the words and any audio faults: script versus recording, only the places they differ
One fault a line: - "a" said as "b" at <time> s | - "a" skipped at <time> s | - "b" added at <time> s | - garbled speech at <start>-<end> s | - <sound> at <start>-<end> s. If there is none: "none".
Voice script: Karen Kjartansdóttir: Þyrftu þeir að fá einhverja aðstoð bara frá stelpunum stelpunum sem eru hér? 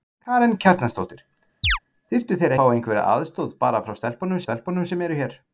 - chirp at 1.6-1.8 s